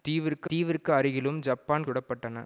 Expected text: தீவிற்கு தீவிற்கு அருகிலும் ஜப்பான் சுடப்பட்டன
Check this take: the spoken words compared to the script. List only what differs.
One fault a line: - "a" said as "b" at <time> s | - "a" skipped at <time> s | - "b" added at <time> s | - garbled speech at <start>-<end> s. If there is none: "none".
none